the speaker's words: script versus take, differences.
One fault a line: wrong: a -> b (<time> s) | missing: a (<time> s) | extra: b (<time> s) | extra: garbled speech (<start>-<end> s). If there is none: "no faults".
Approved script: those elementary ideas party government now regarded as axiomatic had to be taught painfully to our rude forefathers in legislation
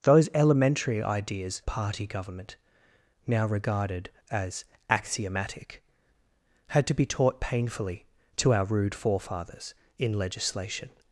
no faults